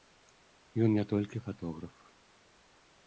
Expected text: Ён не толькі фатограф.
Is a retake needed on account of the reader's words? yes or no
no